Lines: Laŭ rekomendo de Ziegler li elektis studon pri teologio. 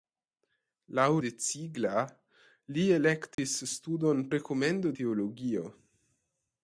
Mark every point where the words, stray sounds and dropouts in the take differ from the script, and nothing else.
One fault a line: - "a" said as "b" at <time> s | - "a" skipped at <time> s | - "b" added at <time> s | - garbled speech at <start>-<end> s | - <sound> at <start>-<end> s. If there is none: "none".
- "rekomendo" skipped at 1.0 s
- dropout at 3.3-3.4 s
- "pri" said as "rekomendo" at 4.3 s